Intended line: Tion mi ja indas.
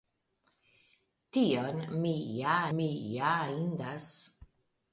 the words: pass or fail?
fail